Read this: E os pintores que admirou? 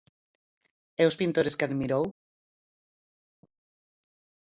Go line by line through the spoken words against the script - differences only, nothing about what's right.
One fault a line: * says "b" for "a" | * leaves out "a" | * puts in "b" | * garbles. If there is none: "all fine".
all fine